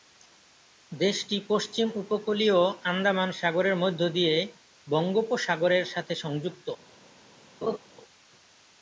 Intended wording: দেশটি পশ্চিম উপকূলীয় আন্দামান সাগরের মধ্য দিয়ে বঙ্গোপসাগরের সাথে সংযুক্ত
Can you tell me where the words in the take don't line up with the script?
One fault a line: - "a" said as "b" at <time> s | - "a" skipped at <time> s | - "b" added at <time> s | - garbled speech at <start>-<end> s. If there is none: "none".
none